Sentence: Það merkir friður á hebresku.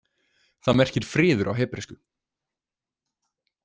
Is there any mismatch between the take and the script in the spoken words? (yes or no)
no